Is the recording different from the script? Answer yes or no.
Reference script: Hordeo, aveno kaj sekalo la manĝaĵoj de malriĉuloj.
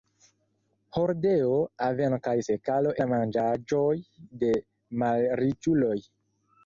no